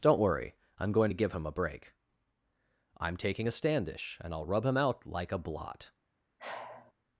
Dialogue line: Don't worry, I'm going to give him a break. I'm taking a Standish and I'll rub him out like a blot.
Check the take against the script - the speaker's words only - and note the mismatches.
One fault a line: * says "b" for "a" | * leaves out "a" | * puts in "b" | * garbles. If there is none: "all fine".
all fine